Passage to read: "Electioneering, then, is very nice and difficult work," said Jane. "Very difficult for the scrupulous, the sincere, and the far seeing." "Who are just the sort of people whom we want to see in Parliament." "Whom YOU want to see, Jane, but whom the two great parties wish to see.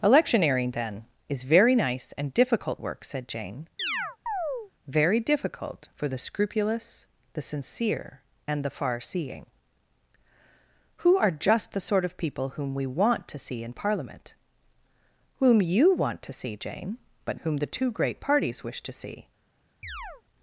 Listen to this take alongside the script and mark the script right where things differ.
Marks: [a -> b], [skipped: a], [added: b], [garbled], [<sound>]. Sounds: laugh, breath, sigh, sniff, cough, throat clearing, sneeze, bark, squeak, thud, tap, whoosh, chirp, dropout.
"Electioneering, then, is very nice and difficult work," said Jane. [chirp] "Very difficult for the scrupulous, the sincere, and the far seeing." "Who are just the sort of people whom we want to see in Parliament." "Whom YOU want to see, Jane, but whom the two great parties wish to see. [chirp]